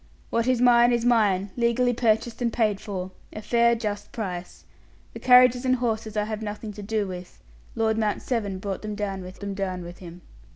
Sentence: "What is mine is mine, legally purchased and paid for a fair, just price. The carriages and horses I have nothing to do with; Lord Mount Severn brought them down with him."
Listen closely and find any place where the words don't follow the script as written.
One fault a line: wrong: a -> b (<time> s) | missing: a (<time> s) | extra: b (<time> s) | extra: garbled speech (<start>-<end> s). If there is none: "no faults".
extra: them down with (9.4 s)